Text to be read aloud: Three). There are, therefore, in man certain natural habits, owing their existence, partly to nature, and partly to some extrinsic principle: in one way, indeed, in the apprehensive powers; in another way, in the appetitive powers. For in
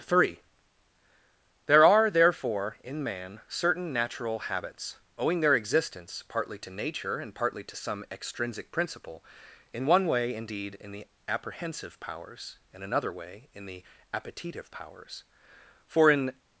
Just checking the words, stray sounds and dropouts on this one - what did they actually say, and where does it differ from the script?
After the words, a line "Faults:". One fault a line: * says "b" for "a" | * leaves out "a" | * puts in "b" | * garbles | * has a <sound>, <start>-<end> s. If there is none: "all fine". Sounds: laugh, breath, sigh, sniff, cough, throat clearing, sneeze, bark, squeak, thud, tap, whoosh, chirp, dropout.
Three). There are, therefore, in man certain natural habits, owing their existence, partly to nature, and partly to some extrinsic principle: in one way, indeed, in the apprehensive powers; in another way, in the appetitive powers. For in
Faults:
all fine